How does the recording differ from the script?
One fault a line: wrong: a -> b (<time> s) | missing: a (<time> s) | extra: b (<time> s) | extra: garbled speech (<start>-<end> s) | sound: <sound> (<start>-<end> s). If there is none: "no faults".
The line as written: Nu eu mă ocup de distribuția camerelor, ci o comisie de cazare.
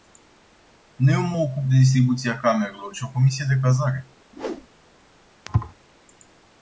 sound: whoosh (4.3-4.7 s)
sound: thud (5.5-5.7 s)